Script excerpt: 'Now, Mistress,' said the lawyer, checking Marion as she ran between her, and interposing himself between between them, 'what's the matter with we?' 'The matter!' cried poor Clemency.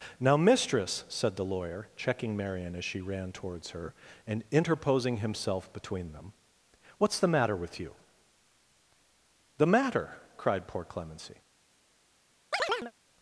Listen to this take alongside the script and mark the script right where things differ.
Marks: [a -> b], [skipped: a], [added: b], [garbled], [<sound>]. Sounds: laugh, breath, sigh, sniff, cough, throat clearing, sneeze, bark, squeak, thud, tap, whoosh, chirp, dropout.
'Now, Mistress,' said the lawyer, checking Marion as she ran [between -> towards] her, and interposing himself between [skipped: between] them, 'what's the matter with [we?' -> you] 'The matter!' cried poor Clemency. [chirp]